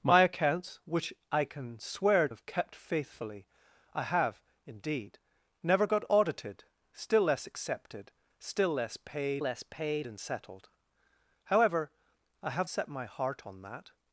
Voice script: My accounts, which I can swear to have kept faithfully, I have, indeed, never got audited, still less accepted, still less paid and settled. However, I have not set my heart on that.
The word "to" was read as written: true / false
false